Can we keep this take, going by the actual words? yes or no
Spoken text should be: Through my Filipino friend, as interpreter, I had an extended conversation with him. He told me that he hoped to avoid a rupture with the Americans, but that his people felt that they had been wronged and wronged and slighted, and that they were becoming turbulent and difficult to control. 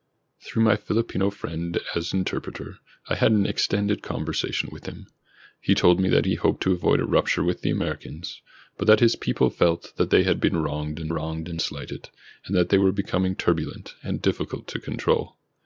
yes